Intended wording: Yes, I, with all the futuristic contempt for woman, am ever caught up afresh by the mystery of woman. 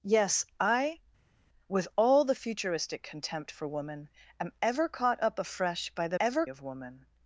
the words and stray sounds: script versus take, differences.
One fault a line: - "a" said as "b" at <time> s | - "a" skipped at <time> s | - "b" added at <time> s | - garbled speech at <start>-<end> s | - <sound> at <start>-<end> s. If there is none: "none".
- "mystery" said as "ever" at 6.2 s